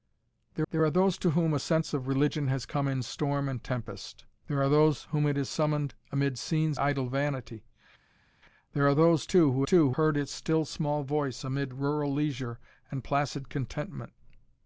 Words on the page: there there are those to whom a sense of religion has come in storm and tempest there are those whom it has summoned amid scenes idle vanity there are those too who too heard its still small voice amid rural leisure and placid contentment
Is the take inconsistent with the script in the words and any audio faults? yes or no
no